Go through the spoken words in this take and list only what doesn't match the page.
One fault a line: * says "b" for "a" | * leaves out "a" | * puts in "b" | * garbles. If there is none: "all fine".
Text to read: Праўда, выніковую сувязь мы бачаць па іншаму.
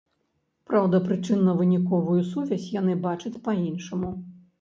* puts in "прычынна"
* says "яны" for "мы"